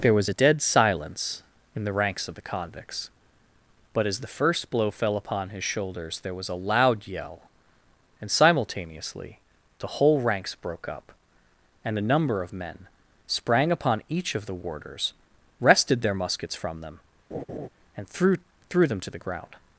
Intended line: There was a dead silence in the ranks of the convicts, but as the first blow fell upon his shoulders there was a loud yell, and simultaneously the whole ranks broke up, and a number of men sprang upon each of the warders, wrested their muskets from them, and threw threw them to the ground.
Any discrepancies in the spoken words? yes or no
no